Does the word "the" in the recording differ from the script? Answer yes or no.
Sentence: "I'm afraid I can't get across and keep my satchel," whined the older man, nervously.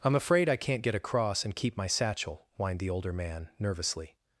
no